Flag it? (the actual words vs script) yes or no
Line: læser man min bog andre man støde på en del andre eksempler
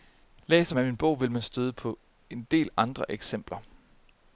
yes